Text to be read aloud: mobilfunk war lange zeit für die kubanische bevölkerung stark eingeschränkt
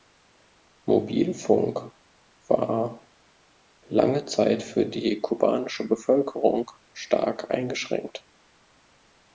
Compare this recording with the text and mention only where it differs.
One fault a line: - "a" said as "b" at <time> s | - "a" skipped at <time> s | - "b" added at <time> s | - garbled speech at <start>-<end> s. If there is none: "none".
none